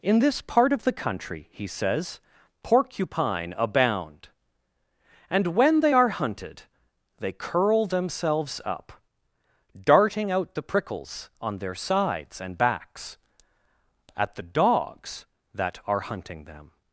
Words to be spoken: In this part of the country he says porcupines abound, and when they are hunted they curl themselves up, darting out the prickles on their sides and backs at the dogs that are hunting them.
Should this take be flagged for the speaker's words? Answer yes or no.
yes